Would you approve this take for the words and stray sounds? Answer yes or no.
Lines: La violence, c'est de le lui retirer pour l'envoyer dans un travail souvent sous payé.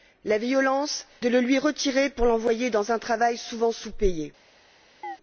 no